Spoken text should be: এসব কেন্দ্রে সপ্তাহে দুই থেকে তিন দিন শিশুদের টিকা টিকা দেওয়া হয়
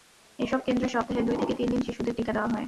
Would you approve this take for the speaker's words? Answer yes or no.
no